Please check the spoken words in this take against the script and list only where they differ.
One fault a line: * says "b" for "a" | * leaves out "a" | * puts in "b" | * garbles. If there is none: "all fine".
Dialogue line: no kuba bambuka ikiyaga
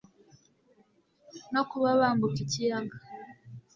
all fine